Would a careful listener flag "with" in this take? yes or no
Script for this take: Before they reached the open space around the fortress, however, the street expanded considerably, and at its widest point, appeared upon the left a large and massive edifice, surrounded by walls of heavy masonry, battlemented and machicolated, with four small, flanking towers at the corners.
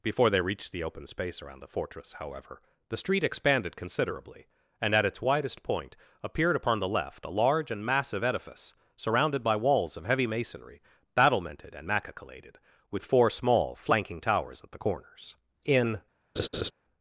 no